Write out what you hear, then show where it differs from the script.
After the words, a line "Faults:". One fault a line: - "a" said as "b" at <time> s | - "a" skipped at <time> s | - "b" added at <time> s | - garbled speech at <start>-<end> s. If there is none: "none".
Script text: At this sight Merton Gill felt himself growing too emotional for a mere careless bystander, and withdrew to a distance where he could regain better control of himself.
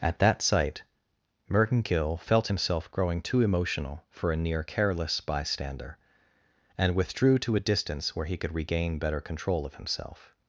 At that sight Merton Gill felt himself growing too emotional for a near careless bystander, and withdrew to a distance where he could regain better control of himself.
Faults:
- "this" said as "that" at 0.2 s
- "mere" said as "near" at 4.4 s